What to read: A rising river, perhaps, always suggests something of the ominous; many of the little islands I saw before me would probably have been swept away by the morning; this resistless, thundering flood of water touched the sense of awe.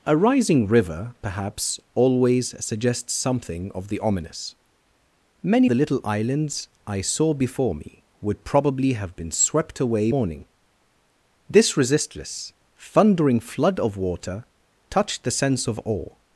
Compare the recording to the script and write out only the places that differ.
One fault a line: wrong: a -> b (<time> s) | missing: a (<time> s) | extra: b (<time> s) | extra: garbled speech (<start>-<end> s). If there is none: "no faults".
missing: of (5.7 s)
missing: by the (10.1 s)